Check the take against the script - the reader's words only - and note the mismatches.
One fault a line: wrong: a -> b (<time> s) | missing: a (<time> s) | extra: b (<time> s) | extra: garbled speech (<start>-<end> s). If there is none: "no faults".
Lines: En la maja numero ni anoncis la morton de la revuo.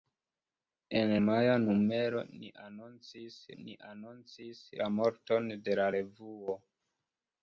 missing: la (1.1 s)
extra: ni anoncis (3.6 s)